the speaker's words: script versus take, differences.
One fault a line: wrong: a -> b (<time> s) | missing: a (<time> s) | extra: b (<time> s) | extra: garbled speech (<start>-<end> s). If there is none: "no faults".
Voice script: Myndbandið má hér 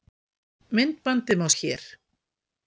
no faults